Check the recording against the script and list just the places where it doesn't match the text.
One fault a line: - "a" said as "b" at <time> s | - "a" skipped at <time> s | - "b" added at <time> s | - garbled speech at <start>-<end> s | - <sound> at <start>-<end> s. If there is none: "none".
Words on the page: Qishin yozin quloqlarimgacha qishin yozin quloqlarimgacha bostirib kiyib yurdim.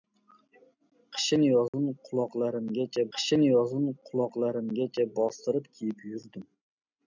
- dropout at 1.7-1.7 s